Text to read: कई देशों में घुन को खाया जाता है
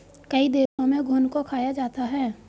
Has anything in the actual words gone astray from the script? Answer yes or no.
no